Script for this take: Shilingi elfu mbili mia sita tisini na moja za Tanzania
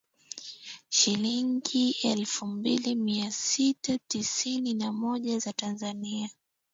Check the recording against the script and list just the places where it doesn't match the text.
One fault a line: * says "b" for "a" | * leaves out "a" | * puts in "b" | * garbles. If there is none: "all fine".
all fine